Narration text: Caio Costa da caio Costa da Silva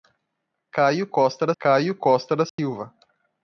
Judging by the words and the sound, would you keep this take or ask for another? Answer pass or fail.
fail